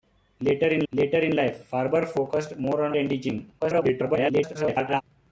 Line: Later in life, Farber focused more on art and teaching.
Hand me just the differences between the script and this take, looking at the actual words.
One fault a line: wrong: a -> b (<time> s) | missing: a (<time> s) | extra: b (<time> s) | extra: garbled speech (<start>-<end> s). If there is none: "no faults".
extra: later in (0.9 s)
missing: art (2.9 s)
extra: garbled speech (3.6-5.0 s)